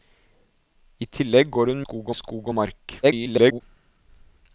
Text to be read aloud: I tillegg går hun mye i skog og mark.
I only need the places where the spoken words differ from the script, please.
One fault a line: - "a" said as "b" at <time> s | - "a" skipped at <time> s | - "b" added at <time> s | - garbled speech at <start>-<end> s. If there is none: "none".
- "mye" said as "skog" at 1.8 s
- garbled speech at 3.0-3.6 s